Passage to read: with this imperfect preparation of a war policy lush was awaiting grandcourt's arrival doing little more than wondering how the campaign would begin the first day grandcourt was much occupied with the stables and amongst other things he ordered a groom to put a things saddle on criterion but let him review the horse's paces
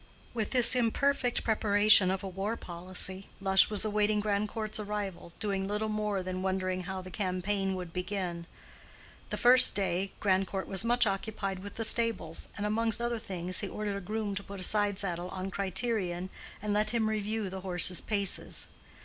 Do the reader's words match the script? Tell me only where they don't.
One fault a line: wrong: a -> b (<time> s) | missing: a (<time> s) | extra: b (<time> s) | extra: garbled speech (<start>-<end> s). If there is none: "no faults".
wrong: things -> side (14.6 s)
wrong: but -> and (16.6 s)